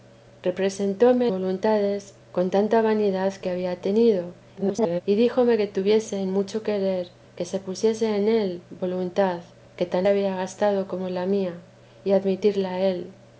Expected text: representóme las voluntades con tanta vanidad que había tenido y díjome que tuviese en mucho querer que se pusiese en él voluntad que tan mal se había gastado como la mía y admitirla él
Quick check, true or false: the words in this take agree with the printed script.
false